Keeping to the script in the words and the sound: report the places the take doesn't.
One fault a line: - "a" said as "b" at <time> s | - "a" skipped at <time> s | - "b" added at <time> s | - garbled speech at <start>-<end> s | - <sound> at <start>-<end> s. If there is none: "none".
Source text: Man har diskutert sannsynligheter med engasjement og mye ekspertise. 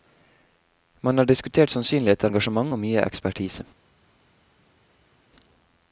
- "med" skipped at 2.3 s